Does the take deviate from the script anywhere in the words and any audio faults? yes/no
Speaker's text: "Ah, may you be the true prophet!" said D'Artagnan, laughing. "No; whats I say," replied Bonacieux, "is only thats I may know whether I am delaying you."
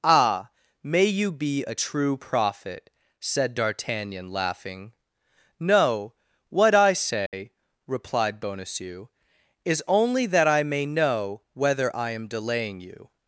yes